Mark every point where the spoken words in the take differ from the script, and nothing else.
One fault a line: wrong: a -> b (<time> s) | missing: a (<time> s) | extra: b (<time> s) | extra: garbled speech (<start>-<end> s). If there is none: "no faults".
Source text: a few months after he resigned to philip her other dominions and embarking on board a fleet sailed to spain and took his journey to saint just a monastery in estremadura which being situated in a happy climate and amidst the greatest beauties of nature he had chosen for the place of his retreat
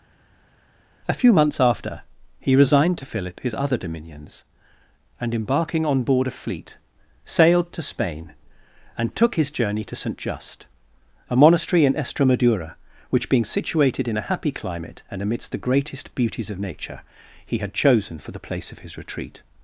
wrong: her -> his (3.4 s)